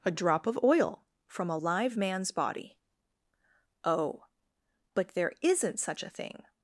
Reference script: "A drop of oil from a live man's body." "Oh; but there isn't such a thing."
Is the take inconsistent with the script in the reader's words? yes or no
no